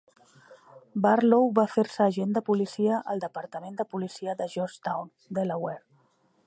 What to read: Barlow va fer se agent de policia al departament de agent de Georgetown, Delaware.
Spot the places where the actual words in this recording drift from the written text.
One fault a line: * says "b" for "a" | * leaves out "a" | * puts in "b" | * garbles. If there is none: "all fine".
* says "policia" for "agent"